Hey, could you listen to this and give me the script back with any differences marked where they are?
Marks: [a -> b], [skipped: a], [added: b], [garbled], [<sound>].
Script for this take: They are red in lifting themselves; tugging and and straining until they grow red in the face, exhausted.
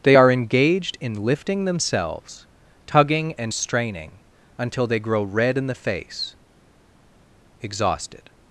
They are [red -> engaged] in lifting themselves; tugging and [skipped: and] straining until they grow red in the face, exhausted.